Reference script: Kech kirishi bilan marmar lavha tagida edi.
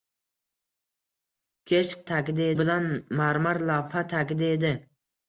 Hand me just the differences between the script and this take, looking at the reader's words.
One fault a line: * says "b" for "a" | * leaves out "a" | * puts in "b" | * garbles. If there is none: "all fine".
* says "tagida" for "kirishi"